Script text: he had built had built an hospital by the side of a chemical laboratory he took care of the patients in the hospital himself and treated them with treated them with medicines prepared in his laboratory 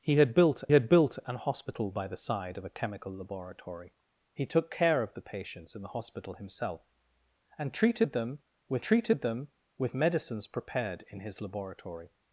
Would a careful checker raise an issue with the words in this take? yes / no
no